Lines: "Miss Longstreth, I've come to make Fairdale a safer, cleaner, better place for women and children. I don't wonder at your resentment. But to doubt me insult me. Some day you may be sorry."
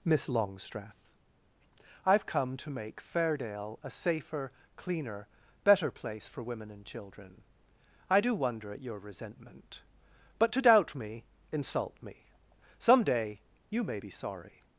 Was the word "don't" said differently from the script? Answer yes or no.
yes